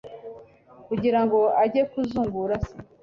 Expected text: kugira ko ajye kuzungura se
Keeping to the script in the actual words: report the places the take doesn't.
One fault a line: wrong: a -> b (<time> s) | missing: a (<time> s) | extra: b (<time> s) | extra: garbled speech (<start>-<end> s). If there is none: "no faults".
wrong: ko -> ngo (1.2 s)